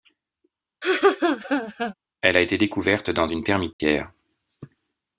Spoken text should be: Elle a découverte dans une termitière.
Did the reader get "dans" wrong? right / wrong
right